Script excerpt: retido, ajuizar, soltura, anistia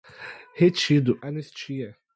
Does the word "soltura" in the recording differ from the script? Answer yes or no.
yes